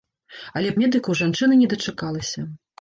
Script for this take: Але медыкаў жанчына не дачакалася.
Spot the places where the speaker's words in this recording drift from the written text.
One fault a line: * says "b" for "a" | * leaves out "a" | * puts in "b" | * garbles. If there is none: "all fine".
all fine